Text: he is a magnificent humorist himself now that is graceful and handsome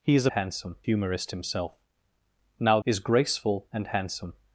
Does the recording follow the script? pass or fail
fail